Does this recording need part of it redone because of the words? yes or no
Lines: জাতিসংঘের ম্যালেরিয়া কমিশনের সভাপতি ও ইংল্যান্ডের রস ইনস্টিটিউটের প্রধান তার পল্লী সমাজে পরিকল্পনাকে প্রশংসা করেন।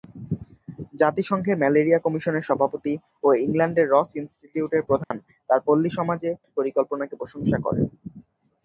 no